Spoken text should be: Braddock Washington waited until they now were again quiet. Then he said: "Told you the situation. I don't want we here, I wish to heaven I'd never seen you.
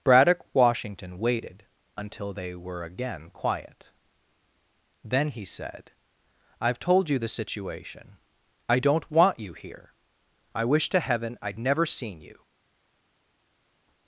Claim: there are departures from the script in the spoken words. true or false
true